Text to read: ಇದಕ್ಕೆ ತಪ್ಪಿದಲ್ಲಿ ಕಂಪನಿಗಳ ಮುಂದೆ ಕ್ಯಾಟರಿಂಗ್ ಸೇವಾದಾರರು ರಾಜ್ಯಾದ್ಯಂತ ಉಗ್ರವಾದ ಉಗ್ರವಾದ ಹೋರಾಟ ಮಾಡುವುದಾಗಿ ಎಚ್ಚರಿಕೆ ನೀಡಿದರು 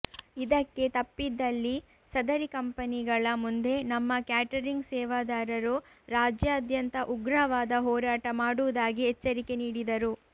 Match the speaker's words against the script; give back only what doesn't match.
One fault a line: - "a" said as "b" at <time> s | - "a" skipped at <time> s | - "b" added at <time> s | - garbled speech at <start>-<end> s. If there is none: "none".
- "ಸದರಿ" added at 2.1 s
- "ನಮ್ಮ" added at 3.9 s
- "ಉಗ್ರವಾದ" skipped at 7.8 s